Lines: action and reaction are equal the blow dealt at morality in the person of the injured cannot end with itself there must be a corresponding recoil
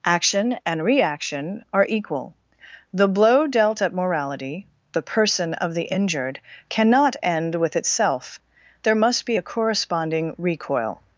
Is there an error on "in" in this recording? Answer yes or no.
yes